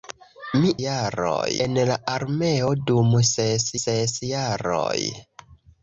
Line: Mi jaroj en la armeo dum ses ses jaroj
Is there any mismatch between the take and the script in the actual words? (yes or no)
no